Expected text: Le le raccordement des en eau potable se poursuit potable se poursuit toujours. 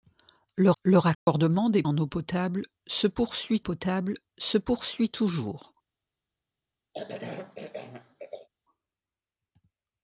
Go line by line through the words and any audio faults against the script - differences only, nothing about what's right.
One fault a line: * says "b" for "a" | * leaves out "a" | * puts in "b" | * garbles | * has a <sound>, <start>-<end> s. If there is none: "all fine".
* has a dropout, 1.1-1.3 s
* has a cough, 6.9-8.5 s